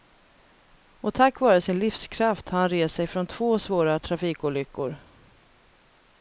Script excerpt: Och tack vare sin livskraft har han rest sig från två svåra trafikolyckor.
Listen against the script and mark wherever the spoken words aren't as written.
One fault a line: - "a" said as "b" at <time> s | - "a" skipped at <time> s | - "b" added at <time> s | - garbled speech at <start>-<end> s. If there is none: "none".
none